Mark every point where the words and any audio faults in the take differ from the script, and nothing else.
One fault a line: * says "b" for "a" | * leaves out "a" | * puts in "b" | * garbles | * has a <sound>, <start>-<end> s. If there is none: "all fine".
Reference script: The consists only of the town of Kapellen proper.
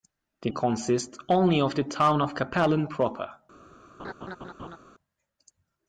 * has a laugh, 4.0-4.8 s